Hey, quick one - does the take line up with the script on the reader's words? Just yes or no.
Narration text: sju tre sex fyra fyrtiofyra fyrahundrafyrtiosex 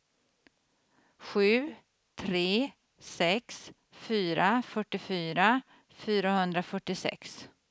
yes